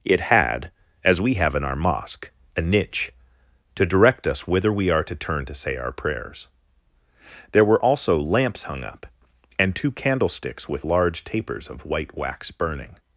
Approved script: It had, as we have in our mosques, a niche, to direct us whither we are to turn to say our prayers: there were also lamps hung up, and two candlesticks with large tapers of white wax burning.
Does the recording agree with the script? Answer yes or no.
no